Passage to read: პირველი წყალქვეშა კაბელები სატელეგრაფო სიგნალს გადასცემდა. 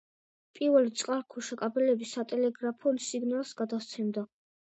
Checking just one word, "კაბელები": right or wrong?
right